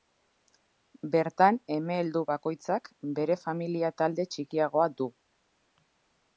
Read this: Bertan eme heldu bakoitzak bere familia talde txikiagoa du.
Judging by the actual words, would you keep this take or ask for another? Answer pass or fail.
pass